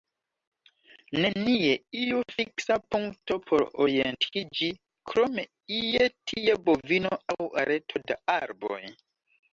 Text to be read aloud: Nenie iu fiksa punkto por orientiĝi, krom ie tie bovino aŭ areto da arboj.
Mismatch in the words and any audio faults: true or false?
false